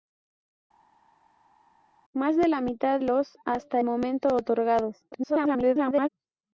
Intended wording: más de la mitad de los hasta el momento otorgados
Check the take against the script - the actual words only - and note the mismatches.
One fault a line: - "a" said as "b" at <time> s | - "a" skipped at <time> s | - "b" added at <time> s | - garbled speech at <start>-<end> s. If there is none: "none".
- "de" skipped at 3.0 s
- "el" skipped at 3.8 s
- garbled speech at 5.1-6.1 s